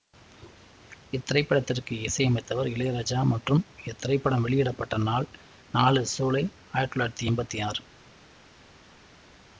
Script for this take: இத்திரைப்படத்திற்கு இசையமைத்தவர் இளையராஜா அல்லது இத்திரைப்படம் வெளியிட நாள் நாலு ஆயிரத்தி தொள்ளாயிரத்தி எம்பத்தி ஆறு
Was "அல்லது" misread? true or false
true